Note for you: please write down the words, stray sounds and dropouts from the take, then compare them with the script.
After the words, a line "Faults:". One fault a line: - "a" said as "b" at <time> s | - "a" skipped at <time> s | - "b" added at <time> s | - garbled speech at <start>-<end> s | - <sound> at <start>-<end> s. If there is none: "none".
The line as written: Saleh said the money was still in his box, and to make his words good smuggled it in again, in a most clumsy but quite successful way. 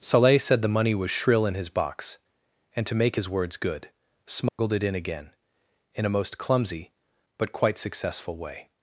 Saleh said the money was shrill in his box, and to make his words good smuggled it in again, in a most clumsy but quite successful way.
Faults:
- "still" said as "shrill" at 1.1 s
- dropout at 4.5-4.6 s